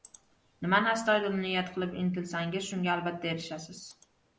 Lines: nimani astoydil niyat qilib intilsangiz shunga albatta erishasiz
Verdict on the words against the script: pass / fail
pass